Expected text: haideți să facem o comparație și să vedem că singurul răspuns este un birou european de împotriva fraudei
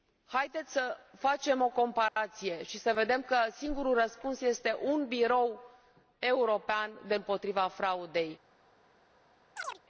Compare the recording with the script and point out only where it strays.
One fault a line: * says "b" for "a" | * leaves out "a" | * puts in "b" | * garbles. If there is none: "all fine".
all fine